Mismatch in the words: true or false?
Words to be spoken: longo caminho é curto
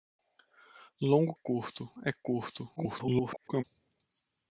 true